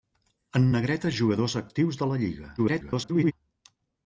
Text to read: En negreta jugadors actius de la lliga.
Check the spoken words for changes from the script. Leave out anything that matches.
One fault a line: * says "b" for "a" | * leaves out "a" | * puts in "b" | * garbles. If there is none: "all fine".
* garbles